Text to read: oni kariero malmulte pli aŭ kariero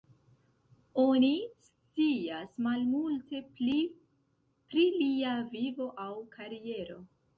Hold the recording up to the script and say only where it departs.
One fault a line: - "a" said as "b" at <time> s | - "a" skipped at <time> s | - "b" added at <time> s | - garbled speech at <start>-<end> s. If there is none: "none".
- "kariero" said as "scias" at 1.6 s
- "pri lia vivo" added at 4.7 s